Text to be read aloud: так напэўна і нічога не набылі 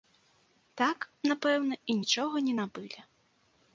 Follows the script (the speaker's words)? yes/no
yes